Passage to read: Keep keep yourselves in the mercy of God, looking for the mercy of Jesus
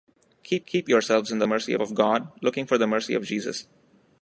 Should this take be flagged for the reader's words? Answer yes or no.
no